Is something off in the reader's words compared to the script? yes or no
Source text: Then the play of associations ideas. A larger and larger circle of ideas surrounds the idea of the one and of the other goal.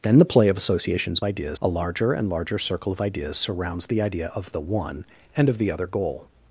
no